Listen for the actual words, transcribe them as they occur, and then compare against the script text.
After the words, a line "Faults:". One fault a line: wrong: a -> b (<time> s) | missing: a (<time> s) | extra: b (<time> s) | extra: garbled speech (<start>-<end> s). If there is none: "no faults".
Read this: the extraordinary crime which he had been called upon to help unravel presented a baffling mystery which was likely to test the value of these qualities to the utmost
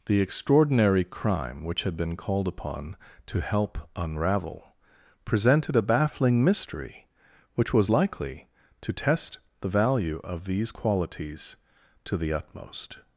the extraordinary crime which had been called upon to help unravel presented a baffling mystery which was likely to test the value of these qualities to the utmost
Faults:
missing: he (1.8 s)